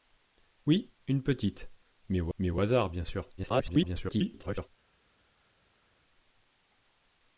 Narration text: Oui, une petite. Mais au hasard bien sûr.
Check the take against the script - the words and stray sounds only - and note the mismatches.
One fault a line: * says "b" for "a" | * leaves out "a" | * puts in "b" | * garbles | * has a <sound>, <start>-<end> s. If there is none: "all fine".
* puts in "mais au"
* garbles